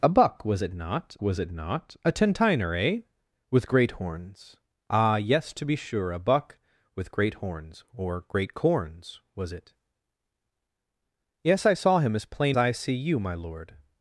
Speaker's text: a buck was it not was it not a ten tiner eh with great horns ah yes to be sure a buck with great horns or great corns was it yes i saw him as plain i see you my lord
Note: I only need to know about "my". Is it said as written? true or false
true